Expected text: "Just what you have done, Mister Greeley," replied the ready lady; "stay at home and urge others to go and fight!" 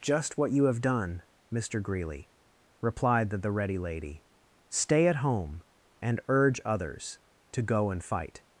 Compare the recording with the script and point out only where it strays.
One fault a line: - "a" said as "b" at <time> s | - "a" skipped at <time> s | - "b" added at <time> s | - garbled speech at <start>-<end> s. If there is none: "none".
- "the" added at 3.4 s